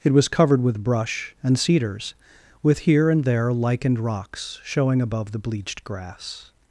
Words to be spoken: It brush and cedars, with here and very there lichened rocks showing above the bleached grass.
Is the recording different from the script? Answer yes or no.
yes